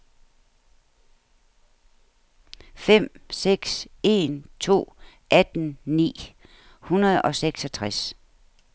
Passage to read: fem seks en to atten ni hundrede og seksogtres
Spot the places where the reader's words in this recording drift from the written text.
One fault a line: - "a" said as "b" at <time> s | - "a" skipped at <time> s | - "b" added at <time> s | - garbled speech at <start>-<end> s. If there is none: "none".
none